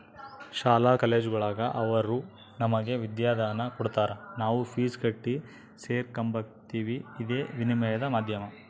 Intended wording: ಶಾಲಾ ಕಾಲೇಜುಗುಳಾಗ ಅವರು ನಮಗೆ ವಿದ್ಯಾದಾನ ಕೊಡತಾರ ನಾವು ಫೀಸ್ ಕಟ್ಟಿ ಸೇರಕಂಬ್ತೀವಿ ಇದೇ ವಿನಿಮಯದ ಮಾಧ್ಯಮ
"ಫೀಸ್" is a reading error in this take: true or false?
false